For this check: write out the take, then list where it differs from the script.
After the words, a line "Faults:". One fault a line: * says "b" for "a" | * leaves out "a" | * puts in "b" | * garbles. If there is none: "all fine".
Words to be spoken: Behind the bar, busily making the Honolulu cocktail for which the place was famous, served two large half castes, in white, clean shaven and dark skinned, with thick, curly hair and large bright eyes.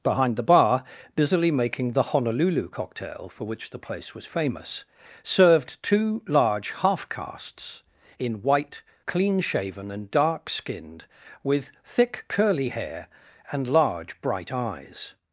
Behind the bar, busily making the Honolulu cocktail for which the place was famous, served two large half castes, in white, clean shaven and dark skinned, with thick, curly hair and large bright eyes.
Faults:
all fine